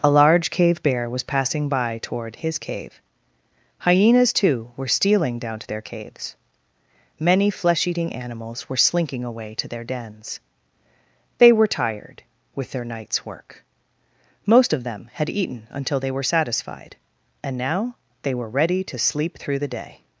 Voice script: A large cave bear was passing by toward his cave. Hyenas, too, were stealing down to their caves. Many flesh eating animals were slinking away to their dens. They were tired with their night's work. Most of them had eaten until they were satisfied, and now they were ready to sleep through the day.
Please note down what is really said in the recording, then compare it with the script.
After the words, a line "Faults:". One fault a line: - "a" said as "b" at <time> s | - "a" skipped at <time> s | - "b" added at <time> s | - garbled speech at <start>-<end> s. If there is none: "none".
A large cave bear was passing by toward his cave. Hyenas, too, were stealing down to their caves. Many flesh eating animals were slinking away to their dens. They were tired with their night's work. Most of them had eaten until they were satisfied, and now they were ready to sleep through the day.
Faults:
none